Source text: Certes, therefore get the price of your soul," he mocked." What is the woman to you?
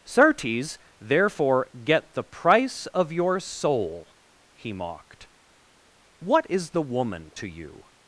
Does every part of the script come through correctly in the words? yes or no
yes